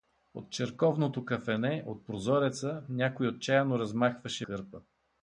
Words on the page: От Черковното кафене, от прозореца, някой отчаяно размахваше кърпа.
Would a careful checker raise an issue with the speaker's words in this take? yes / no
no